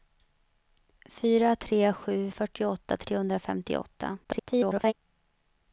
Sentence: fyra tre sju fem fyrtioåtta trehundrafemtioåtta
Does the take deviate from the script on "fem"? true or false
true